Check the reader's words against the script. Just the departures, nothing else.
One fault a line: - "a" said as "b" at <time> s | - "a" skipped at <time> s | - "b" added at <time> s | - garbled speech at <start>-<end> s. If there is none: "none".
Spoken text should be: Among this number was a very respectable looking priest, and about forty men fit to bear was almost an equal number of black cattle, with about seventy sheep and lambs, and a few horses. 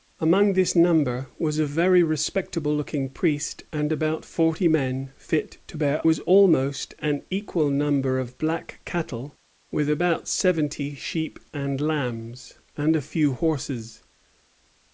none